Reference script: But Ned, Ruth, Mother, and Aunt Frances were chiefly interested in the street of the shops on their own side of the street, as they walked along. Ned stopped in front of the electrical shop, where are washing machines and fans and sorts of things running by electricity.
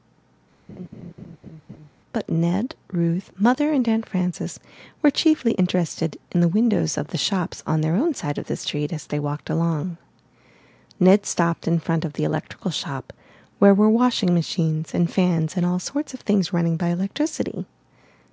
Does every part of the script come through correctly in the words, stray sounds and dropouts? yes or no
no